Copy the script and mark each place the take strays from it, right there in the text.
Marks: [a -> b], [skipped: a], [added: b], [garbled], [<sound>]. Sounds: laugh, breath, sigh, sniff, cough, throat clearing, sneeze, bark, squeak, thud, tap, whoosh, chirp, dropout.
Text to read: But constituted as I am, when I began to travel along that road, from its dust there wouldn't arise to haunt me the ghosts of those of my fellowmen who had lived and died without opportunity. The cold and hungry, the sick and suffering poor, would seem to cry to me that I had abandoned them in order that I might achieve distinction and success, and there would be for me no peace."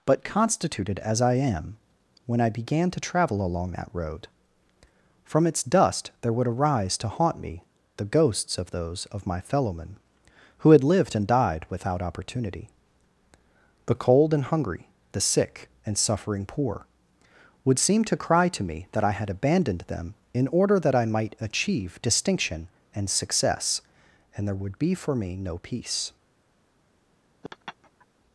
But constituted as I am, when I began to travel along that road, from its dust there [wouldn't -> would] arise to haunt me the ghosts of those of my fellowmen who had lived and died without opportunity. The cold and hungry, the sick and suffering poor, would seem to cry to me that I had abandoned them in order that I might achieve distinction and success, and there would be for me no peace." [laugh]